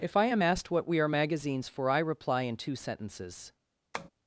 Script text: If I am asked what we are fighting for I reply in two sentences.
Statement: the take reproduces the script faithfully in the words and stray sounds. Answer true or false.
false